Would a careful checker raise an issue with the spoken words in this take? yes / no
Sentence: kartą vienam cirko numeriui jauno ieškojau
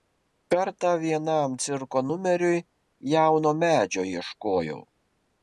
yes